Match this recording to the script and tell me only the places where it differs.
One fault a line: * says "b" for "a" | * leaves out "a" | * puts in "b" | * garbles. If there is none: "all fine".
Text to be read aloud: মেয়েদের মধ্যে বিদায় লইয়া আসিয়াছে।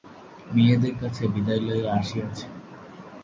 * says "কাছে" for "মধ্যে"